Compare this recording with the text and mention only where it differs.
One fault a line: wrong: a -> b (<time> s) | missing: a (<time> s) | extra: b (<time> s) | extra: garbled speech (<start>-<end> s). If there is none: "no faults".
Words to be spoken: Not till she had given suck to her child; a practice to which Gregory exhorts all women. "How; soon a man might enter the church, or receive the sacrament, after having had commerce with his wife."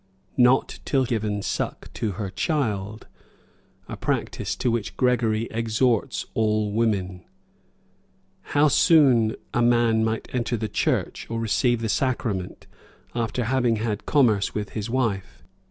missing: she had (1.1 s)